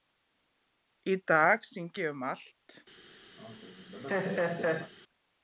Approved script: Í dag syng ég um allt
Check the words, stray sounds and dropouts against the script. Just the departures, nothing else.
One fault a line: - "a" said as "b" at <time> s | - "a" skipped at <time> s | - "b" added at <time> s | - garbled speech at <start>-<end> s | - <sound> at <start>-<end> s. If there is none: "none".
- laugh at 3.4-4.9 s